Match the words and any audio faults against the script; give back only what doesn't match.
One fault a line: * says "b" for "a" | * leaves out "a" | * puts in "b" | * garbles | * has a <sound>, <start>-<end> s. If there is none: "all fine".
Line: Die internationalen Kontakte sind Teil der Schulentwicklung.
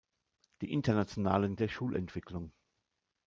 * leaves out "Kontakte sind Teil"